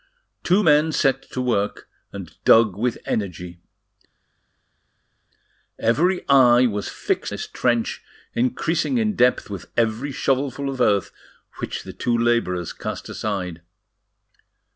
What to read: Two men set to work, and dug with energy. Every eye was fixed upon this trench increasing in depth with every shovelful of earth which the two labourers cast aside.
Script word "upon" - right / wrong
wrong